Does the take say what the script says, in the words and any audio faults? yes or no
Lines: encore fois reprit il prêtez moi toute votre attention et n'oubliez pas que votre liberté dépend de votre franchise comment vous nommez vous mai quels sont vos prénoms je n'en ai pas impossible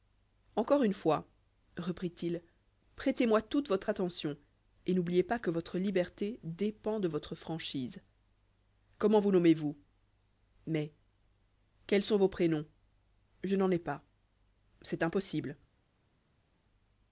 no